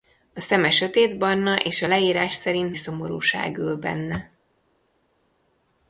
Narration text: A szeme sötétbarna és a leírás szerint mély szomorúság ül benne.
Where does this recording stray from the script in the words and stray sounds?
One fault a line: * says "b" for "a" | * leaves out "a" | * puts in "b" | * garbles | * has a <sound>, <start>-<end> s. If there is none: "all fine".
* leaves out "mély"